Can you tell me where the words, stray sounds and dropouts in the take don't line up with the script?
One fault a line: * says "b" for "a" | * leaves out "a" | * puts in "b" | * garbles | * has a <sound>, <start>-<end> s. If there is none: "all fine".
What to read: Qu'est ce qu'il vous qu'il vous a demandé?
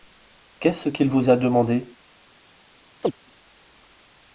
* leaves out "qu'il vous"
* has a chirp, 3.0-3.1 s